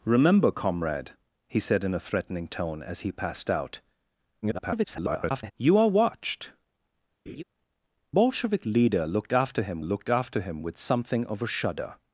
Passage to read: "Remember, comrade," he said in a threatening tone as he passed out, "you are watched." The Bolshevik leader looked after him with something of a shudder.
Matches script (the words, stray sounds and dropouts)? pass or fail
fail